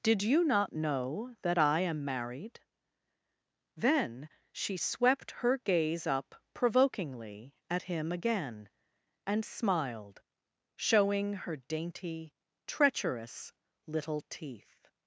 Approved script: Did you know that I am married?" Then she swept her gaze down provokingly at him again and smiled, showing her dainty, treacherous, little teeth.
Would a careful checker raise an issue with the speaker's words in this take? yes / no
yes